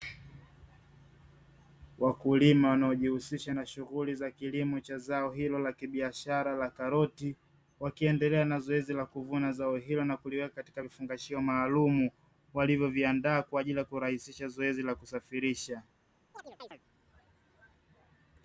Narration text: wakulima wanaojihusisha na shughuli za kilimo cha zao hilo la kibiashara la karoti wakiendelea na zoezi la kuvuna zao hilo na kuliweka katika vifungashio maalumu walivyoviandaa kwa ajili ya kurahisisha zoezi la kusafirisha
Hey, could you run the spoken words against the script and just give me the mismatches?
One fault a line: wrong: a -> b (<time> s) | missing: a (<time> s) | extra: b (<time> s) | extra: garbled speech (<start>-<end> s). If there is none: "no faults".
no faults